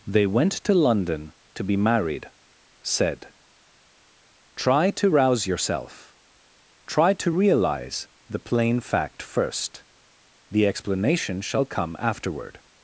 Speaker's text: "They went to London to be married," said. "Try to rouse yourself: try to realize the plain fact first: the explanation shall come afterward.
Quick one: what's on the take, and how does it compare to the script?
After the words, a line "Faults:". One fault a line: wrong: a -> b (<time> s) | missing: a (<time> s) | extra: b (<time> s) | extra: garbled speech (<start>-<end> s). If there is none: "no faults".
"They went to London to be married," said. "Try to rouse yourself: try to realize the plain fact first: the explanation shall come afterward.
Faults:
no faults